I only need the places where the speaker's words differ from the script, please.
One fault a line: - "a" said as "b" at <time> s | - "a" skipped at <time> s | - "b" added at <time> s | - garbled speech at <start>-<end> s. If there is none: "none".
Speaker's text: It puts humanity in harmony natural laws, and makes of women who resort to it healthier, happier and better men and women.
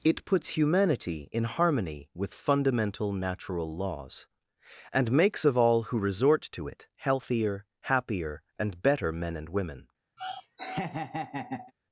- "with fundamental" added at 2.1 s
- "women" said as "all" at 5.6 s